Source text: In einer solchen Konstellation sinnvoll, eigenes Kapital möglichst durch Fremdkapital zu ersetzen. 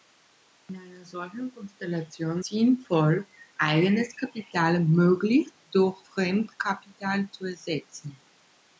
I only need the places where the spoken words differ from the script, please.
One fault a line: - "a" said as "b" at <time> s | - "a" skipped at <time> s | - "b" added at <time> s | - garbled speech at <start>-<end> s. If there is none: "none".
none